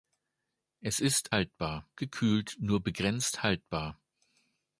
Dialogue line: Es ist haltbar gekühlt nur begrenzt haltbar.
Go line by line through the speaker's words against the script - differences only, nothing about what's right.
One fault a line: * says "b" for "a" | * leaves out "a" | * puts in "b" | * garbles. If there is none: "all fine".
all fine